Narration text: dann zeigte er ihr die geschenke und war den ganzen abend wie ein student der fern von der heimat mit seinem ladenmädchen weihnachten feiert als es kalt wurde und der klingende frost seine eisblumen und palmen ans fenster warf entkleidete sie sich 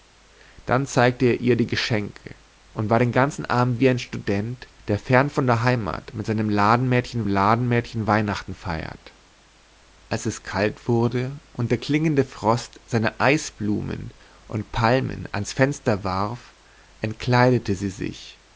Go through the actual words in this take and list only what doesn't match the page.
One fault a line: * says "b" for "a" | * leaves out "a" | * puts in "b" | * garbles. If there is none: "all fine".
* puts in "ladenmädchen"